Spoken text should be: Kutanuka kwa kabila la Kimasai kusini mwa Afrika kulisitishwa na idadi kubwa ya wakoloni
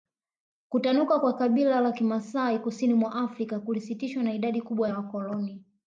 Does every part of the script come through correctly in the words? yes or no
yes